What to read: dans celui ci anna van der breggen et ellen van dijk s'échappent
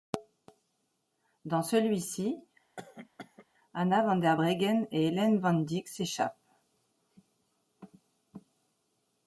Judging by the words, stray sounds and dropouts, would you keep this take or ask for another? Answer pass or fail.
fail